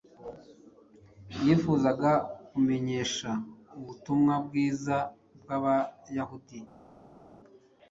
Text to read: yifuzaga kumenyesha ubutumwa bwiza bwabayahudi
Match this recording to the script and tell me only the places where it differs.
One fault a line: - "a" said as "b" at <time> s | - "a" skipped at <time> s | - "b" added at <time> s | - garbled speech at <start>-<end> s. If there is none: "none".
none